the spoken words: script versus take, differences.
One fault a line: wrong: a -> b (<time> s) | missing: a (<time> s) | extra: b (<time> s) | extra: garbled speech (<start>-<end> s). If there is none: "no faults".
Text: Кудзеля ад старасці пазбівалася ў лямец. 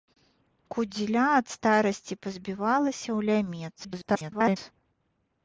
extra: garbled speech (3.8-4.6 s)